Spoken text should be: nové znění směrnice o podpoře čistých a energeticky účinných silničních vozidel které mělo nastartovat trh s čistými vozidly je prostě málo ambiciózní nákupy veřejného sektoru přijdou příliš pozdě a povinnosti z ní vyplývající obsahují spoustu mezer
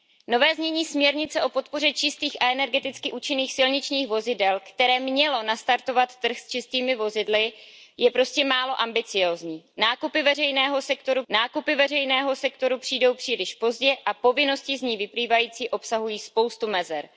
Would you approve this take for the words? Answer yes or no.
no